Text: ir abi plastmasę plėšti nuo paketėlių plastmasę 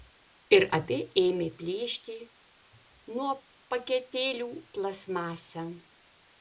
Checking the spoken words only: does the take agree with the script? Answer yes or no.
no